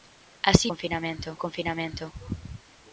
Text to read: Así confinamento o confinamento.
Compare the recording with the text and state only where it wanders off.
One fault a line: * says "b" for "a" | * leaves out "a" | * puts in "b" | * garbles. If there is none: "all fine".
all fine